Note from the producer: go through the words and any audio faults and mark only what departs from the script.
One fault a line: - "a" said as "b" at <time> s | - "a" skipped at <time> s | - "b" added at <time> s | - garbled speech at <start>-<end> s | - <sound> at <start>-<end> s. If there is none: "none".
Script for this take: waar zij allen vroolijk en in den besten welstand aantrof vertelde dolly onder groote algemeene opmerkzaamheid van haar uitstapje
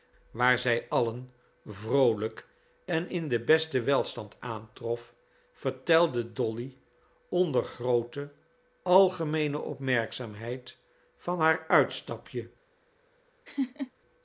- laugh at 13.5-13.9 s